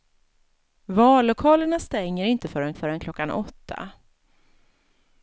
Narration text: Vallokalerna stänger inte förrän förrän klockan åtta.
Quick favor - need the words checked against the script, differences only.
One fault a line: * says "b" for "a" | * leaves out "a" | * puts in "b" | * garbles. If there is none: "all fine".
all fine